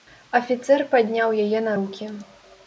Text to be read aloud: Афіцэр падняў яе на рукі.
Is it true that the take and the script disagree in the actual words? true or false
false